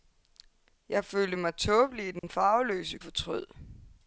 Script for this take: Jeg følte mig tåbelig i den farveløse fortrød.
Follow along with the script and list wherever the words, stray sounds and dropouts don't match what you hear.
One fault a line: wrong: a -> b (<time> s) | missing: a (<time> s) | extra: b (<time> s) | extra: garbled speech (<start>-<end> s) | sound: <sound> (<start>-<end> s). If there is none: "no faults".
sound: dropout (2.2-2.2 s)